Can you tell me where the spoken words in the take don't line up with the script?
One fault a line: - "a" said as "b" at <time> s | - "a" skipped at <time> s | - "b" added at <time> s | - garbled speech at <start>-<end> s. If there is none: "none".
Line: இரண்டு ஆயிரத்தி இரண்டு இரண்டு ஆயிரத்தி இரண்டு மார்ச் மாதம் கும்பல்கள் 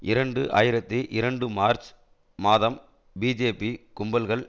- "இரண்டு ஆயிரத்தி இரண்டு" skipped at 1.5 s
- "பிஜேபி" added at 3.2 s